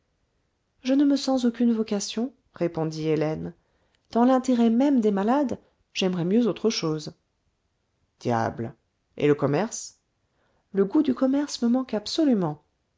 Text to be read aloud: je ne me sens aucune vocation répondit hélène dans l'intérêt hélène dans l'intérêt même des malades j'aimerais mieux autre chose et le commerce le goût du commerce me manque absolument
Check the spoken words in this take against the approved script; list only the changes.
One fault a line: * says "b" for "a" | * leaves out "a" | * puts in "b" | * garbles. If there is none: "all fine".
* leaves out "hélène dans l'intérêt"
* puts in "diable"